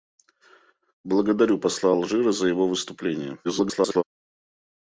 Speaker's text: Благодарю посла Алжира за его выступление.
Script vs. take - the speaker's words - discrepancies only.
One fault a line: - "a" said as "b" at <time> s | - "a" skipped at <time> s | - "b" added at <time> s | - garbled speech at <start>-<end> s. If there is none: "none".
- garbled speech at 3.4-4.0 s